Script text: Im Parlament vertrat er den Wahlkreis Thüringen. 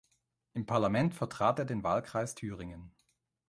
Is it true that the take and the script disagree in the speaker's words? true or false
false